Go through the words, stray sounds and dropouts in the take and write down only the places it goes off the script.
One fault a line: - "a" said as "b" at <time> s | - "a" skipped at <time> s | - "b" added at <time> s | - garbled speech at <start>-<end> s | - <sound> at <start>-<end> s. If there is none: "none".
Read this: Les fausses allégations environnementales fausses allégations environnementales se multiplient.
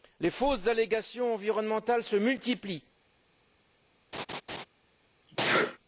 - "fausses allégations environnementales" skipped at 2.0 s
- laugh at 4.1-4.6 s
- sneeze at 5.3-5.8 s